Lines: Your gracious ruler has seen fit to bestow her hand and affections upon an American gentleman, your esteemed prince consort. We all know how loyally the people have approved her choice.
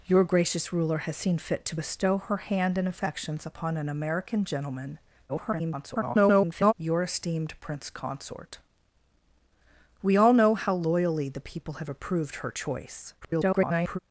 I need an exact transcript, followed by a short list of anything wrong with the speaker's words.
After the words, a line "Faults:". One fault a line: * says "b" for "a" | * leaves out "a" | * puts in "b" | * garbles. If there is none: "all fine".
Your gracious ruler has seen fit to bestow her hand and affections upon an American gentleman, [garbled] your esteemed prince consort. We all know how loyally the people have approved her choice. [garbled]
Faults:
* garbles
* garbles